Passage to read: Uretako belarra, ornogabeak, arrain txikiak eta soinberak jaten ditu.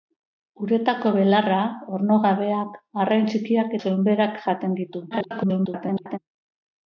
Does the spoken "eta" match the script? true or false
false